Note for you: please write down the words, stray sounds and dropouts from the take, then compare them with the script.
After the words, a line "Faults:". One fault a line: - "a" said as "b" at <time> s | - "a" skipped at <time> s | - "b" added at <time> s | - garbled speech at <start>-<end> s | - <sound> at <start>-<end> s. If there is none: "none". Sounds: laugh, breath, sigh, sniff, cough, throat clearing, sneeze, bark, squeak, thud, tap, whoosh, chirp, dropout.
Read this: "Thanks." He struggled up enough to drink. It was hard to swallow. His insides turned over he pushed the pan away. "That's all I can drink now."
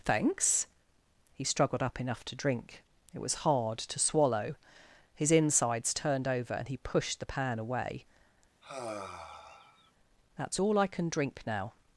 "Thanks." He struggled up enough to drink. It was hard to swallow. His insides turned over and he pushed the pan away. "That's all I can drink now."
Faults:
- "and" added at 6.5 s
- sigh at 8.6-9.9 s